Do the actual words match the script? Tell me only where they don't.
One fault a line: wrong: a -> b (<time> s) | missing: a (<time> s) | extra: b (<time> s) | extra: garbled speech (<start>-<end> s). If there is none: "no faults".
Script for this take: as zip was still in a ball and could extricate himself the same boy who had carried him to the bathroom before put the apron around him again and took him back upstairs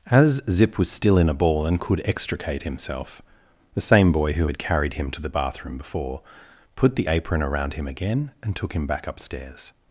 no faults